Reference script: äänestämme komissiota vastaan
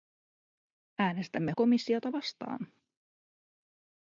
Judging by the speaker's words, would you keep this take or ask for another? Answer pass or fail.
pass